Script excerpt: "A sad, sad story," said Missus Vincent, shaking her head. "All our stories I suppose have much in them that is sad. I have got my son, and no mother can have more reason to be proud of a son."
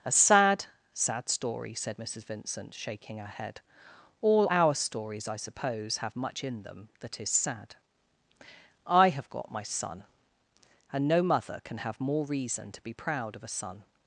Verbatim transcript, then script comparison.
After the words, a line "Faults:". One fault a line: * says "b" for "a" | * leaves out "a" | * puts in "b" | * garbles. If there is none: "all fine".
"A sad, sad story," said Missus Vincent, shaking her head. "All our stories I suppose have much in them that is sad. I have got my son, and no mother can have more reason to be proud of a son."
Faults:
all fine